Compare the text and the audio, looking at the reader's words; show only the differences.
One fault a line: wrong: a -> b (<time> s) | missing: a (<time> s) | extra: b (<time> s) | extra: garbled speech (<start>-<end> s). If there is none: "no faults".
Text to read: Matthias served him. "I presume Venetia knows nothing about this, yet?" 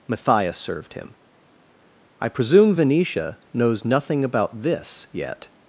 no faults